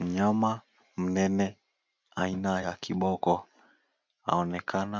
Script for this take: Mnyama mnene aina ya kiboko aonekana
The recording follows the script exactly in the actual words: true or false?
true